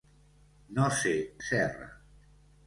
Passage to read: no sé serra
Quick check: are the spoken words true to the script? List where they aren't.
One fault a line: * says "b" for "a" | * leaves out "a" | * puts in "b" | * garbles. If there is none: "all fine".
all fine